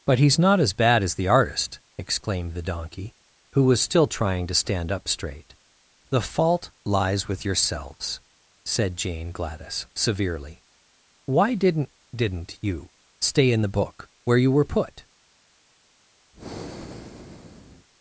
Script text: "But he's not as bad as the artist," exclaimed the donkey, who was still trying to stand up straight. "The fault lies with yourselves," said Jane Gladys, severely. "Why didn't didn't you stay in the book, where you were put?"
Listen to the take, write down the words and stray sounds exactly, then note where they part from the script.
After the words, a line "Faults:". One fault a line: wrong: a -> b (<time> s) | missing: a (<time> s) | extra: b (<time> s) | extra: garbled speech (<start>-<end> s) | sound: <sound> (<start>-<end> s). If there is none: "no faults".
"But he's not as bad as the artist," exclaimed the donkey, who was still trying to stand up straight. "The fault lies with yourselves," said Jane Gladys, severely. "Why didn't didn't you stay in the book, where you were put?"
Faults:
sound: breath (16.3-17.9 s)